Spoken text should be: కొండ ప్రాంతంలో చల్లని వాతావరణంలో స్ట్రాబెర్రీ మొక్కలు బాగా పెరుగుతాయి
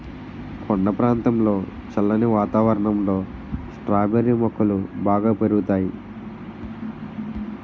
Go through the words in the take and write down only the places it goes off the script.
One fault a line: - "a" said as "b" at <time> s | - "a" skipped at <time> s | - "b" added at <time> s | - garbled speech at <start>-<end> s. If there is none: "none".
none